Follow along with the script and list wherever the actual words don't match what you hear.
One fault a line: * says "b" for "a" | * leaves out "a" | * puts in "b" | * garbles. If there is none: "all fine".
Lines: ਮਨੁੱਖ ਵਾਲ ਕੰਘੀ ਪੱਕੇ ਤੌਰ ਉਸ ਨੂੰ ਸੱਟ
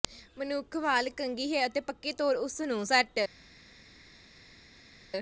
* puts in "ਹੈ ਅਤੇ"